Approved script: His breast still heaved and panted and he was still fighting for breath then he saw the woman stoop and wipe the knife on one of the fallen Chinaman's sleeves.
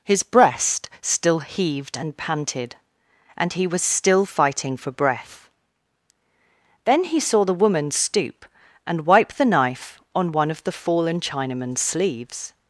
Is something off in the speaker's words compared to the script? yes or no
no